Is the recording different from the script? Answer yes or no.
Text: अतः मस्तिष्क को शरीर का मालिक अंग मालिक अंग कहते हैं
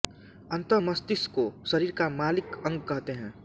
yes